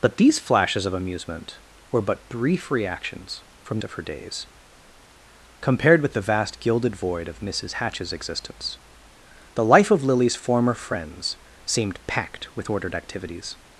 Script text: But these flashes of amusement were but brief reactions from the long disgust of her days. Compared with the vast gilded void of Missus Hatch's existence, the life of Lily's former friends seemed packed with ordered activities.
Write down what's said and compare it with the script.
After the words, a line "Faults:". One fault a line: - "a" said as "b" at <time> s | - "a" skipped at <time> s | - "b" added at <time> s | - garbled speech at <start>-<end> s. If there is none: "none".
But these flashes of amusement were but brief reactions from of her days. Compared with the vast gilded void of Missus Hatch's existence, the life of Lily's former friends seemed packed with ordered activities.
Faults:
- "the long disgust" skipped at 3.8 s